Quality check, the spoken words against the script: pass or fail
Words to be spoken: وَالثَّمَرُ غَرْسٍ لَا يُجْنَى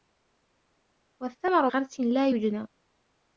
pass